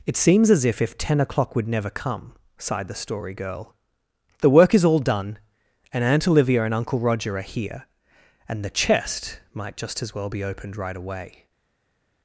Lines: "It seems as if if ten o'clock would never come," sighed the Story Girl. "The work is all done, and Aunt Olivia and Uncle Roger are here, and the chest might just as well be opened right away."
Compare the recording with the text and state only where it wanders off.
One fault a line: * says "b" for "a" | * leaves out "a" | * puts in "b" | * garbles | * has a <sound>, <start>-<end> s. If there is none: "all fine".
all fine